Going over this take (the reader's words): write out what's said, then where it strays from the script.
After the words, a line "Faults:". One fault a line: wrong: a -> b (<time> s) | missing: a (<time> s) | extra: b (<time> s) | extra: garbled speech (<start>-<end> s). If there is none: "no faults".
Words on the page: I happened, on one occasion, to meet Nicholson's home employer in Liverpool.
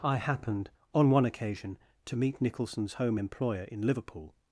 I happened, on one occasion, to meet Nicholson's home employer in Liverpool.
Faults:
no faults